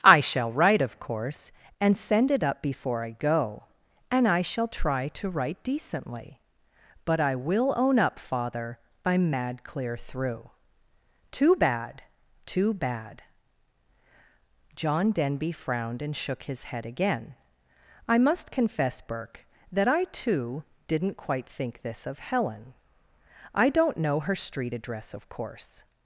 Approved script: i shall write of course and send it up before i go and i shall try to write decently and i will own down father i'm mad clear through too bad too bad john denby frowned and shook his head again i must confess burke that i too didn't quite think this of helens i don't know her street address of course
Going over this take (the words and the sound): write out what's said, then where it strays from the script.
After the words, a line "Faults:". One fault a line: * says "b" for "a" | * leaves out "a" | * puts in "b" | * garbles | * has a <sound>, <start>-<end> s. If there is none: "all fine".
i shall write of course and send it up before i go and i shall try to write decently but i will own up father i'm mad clear through too bad too bad john denby frowned and shook his head again i must confess burke that i too didn't quite think this of helen i don't know her street address of course
Faults:
* says "but" for "and"
* says "up" for "down"
* says "helen" for "helens"